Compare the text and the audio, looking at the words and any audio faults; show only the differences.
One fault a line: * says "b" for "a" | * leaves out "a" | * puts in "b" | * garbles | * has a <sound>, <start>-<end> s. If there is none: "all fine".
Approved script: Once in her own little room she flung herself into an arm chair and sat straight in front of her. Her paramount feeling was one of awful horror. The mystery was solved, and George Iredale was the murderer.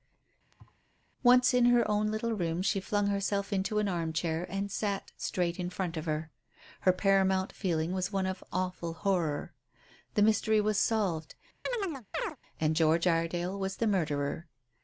* has a thud, 0.5-0.8 s
* has a chirp, 11.7-12.4 s